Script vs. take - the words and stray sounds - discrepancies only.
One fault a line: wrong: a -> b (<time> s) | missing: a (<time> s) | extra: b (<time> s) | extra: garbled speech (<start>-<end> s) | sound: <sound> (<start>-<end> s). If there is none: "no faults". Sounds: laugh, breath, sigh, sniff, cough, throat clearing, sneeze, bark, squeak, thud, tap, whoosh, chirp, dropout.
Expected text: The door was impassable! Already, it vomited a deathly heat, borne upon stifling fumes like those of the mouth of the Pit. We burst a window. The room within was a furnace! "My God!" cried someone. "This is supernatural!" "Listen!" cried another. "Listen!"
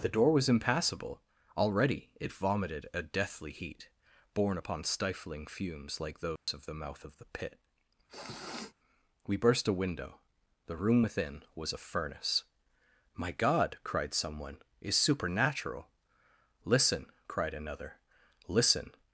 sound: dropout (6.4-6.5 s)
sound: sniff (8.1-8.7 s)
missing: This (14.6 s)